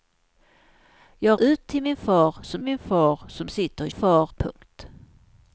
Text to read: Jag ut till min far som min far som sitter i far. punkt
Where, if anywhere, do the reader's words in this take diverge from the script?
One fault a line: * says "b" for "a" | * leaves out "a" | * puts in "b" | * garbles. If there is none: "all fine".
all fine